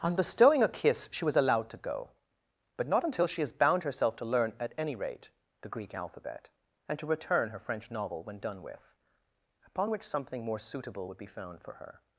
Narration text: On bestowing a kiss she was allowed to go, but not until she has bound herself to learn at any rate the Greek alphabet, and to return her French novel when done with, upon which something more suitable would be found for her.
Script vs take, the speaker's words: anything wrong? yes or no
no